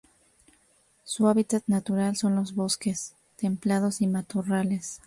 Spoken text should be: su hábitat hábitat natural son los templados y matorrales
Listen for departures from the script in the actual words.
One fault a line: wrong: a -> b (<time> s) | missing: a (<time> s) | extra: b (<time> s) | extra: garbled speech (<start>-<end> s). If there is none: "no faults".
missing: hábitat (1.6 s)
extra: bosques (2.5 s)